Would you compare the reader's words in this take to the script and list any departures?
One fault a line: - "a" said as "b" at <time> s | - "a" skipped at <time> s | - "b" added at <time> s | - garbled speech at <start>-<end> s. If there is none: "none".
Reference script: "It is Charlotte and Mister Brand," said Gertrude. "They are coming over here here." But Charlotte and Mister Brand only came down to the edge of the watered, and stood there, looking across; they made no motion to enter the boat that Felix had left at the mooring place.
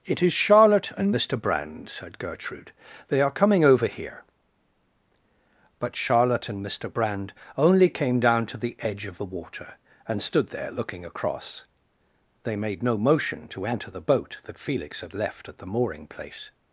- "here" skipped at 4.2 s
- "watered" said as "water" at 9.2 s